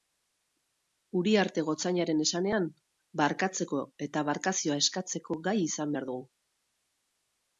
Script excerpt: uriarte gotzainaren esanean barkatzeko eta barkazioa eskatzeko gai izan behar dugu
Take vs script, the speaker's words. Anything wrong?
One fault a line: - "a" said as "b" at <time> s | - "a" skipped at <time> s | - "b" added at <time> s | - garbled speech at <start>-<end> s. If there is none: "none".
none